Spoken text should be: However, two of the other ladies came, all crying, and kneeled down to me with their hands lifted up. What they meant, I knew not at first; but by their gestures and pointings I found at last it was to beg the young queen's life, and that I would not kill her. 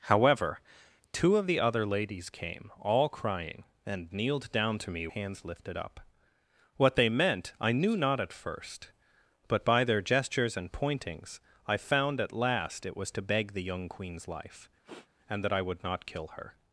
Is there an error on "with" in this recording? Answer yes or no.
yes